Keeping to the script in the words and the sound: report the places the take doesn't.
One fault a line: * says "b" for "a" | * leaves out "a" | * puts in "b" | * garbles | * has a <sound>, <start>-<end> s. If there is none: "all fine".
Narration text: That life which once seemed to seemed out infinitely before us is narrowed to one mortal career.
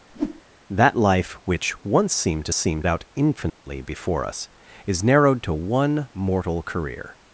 * has a whoosh, 0.1-0.4 s
* has a dropout, 3.5-3.6 s